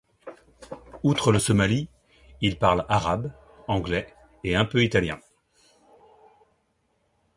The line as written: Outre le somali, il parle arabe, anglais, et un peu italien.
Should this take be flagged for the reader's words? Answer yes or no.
no